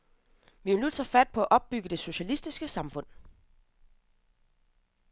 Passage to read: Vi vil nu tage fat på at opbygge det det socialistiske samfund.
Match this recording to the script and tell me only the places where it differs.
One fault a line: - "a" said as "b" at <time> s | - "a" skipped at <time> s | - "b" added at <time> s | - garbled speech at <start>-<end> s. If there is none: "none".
- "det" skipped at 2.0 s